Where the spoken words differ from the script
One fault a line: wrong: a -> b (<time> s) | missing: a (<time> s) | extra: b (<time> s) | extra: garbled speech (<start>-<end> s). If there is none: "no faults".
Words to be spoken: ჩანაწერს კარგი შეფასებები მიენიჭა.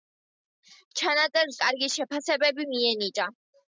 no faults